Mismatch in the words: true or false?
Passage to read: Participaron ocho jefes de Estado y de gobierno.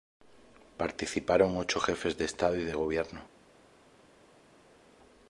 false